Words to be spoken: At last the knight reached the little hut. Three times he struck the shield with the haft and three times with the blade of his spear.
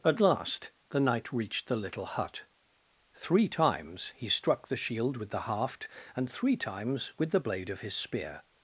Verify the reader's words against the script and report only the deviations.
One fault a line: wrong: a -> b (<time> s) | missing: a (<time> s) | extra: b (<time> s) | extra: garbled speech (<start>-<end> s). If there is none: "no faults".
no faults